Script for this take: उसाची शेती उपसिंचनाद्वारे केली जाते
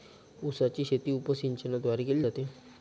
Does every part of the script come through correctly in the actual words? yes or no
yes